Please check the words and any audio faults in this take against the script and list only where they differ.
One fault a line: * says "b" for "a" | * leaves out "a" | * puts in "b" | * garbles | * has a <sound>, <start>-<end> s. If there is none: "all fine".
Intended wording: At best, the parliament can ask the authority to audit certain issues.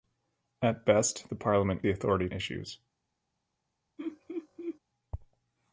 * leaves out "can ask"
* leaves out "to audit certain"
* has a laugh, 4.0-4.8 s